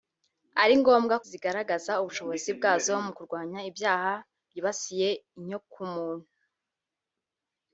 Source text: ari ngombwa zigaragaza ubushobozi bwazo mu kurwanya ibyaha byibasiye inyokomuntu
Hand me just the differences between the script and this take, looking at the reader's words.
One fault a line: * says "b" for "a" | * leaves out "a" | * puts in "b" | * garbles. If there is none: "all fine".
all fine